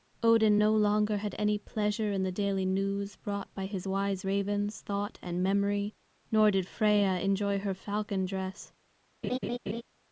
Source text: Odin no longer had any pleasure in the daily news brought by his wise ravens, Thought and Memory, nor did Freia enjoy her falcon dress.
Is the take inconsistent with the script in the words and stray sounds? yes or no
yes